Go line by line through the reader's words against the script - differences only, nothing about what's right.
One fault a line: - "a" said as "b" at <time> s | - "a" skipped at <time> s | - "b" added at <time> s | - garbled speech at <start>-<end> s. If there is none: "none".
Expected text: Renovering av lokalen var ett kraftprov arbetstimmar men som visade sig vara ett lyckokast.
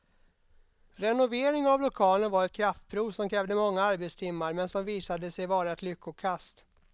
- "som krävde många" added at 3.1 s